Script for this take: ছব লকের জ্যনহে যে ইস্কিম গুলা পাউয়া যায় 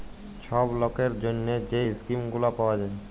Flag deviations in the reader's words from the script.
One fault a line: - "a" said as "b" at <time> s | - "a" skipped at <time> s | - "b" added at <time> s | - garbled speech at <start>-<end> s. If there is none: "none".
none